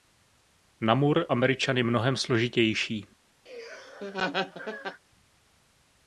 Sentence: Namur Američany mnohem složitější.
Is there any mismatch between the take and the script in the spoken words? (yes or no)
no